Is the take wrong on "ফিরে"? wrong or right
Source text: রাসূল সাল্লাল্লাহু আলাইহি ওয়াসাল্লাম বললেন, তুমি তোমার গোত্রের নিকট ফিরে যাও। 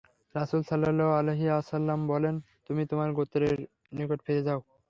right